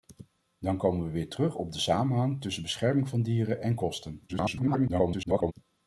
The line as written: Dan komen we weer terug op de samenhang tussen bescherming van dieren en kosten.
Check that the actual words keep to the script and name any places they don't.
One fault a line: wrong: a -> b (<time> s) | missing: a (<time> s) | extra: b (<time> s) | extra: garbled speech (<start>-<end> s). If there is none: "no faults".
extra: garbled speech (4.3-5.5 s)